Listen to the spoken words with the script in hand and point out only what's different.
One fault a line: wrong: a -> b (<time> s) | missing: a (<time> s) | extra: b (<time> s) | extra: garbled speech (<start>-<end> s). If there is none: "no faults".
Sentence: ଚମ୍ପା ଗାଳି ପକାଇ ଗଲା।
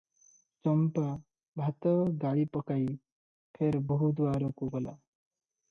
extra: ଭାତ (1.6 s)
extra: ଫେର ବୋହୂ ଦୁଆରକୁ (3.5 s)